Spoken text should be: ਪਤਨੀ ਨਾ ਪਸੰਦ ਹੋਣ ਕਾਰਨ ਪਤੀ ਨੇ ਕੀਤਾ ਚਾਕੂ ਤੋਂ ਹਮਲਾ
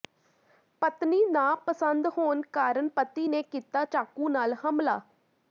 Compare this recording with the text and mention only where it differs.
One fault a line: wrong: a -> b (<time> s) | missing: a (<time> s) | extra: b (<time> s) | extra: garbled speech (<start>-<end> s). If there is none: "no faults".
wrong: ਤੋਂ -> ਨਾਲ (4.3 s)